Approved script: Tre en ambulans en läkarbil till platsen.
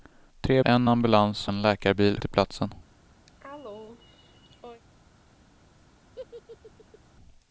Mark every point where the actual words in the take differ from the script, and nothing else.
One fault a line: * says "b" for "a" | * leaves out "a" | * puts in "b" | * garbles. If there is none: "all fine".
all fine